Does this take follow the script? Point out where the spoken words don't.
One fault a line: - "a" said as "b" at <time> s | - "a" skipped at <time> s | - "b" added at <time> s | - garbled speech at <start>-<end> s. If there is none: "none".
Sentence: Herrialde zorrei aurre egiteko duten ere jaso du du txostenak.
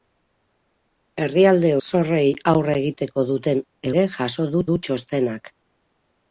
none